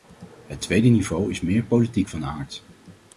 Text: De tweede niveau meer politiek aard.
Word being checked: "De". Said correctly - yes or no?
no